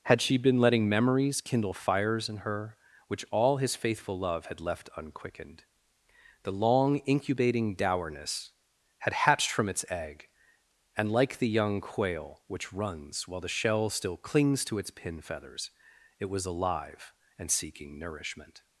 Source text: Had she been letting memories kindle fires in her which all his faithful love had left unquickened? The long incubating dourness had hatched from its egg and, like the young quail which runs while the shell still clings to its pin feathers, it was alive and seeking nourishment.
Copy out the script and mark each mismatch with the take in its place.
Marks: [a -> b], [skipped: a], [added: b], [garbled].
Had she been letting memories kindle fires in her which all his faithful love had left unquickened? The long incubating dourness had hatched from its egg and, like the young quail which runs while the shell still clings to its pin feathers, it was alive and seeking nourishment.